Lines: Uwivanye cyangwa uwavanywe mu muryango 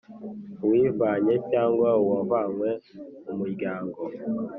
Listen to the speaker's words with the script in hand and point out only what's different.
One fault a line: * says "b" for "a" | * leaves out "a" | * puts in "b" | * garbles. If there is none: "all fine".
all fine